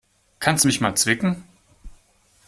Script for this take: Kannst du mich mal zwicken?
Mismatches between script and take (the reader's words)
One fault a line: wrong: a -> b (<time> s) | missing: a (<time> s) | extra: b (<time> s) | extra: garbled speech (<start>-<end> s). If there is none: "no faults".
no faults